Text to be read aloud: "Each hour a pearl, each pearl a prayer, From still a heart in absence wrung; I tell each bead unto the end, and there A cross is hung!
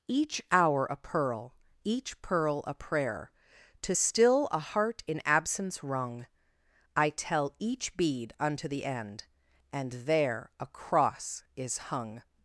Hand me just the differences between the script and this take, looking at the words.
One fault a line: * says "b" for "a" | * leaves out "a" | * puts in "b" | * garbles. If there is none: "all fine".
* says "To" for "From"